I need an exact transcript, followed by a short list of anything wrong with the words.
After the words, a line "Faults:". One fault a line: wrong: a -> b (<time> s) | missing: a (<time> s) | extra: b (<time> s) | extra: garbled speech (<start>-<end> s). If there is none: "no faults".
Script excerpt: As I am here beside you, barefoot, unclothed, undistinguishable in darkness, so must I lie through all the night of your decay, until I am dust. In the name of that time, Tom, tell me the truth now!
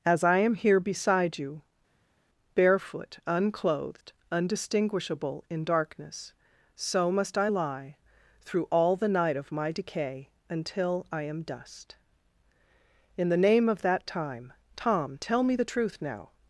As I am here beside you, barefoot, unclothed, undistinguishable in darkness, so must I lie through all the night of my decay, until I am dust. In the name of that time, Tom, tell me the truth now!
Faults:
wrong: your -> my (9.5 s)